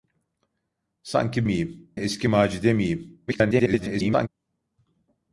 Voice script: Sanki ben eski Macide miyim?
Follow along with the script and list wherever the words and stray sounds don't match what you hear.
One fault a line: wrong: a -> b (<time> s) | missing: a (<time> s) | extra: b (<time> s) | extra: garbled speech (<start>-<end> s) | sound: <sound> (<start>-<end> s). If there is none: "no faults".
wrong: ben -> miyim (1.4 s)
extra: garbled speech (3.3-4.3 s)